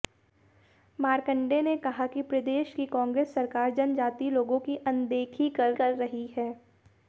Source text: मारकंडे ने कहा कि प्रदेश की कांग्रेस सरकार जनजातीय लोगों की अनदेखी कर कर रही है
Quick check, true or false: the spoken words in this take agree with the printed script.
true